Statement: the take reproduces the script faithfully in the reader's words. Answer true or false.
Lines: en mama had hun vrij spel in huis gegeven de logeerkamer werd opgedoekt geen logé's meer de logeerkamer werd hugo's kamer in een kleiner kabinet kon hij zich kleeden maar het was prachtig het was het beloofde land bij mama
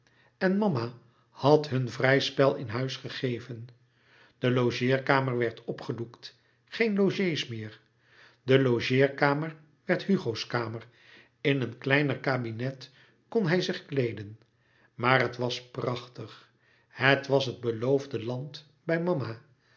true